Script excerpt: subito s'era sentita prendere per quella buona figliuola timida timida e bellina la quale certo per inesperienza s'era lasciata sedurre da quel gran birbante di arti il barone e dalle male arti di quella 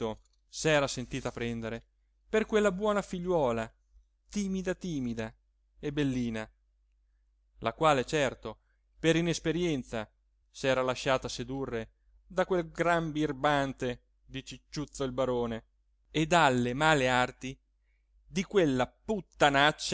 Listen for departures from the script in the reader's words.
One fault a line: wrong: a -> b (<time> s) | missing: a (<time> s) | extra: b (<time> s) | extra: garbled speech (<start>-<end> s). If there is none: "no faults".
wrong: arti -> cicciuzzo (14.4 s)